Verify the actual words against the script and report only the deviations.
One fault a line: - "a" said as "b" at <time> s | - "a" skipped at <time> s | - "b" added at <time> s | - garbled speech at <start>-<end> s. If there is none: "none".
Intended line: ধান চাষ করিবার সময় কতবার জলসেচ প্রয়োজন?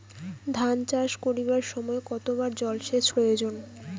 none